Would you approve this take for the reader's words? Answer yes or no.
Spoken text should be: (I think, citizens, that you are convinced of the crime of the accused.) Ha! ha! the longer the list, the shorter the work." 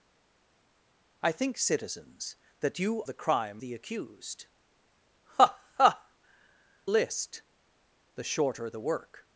no